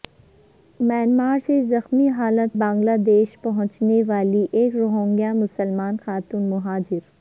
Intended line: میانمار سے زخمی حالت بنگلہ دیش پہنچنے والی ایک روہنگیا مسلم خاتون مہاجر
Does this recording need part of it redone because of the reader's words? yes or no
no